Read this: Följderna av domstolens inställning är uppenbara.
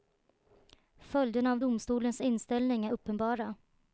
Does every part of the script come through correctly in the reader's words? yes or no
yes